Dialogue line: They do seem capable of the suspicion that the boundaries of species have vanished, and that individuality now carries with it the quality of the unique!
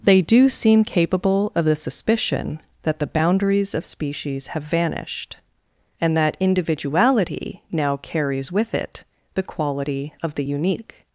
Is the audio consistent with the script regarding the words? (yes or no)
yes